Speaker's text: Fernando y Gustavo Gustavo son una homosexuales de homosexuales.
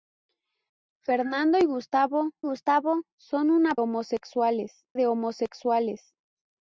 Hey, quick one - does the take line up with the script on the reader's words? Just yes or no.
yes